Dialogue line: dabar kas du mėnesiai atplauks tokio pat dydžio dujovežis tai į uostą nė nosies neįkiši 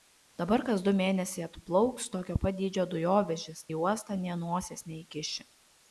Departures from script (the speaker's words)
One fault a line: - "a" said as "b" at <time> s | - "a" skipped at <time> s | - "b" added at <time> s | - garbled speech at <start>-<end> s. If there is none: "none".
- "tai" skipped at 3.6 s